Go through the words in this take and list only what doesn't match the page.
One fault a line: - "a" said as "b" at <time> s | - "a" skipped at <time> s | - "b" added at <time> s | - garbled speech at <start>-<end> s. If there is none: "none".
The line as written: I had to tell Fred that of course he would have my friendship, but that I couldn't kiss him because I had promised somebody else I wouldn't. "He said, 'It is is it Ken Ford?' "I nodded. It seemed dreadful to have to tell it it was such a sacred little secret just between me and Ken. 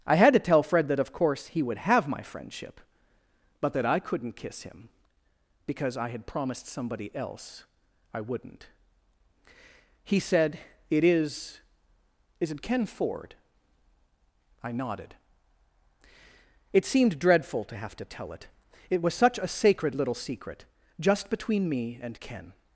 none